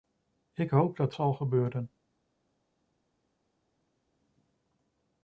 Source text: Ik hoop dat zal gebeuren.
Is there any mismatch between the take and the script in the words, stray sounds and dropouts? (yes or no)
no